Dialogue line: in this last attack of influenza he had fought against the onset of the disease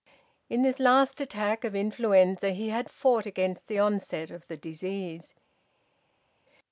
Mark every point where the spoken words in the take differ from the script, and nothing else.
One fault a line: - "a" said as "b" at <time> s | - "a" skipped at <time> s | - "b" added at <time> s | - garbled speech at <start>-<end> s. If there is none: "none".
none